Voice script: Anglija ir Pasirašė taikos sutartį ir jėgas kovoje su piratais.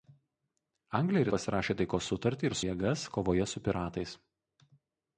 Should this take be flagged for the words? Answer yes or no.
no